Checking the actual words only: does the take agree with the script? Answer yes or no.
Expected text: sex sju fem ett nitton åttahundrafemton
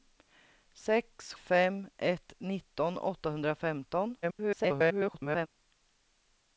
no